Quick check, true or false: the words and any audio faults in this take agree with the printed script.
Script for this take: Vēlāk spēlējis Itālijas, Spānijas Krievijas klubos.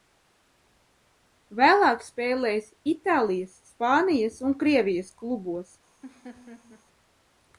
false